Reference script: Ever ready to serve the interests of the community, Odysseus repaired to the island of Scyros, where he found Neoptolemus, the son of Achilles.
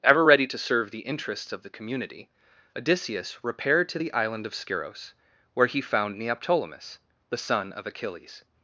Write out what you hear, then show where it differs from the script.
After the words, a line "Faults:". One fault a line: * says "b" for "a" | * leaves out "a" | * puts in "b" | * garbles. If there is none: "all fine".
Ever ready to serve the interests of the community, Odysseus repaired to the island of Scyros, where he found Neoptolemus, the son of Achilles.
Faults:
all fine